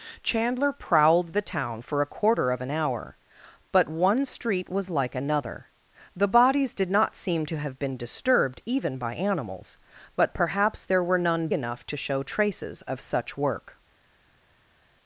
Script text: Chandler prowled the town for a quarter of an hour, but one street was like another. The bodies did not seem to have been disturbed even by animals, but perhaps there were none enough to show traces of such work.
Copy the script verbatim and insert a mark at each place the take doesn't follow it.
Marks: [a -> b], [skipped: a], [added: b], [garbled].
Chandler prowled the town for a quarter of an hour, but one street was like another. The bodies did not seem to have been disturbed even by animals, but perhaps there were none enough to show traces of such work.